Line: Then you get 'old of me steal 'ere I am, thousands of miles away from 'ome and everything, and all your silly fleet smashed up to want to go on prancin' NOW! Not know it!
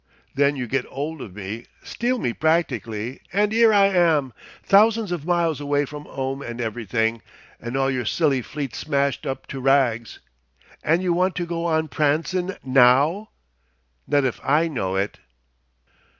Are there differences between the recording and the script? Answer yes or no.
yes